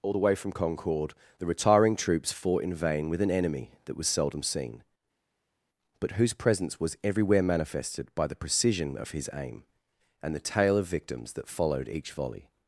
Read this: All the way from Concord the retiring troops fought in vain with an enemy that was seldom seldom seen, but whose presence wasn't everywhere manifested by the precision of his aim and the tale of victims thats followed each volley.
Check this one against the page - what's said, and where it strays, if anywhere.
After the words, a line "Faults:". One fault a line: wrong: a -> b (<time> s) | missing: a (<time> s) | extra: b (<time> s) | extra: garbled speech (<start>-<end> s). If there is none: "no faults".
All the way from Concord the retiring troops fought in vain with an enemy that was seldom seen, but whose presence was everywhere manifested by the precision of his aim and the tale of victims that followed each volley.
Faults:
missing: seldom (4.4 s)
wrong: wasn't -> was (6.8 s)
wrong: thats -> that (11.3 s)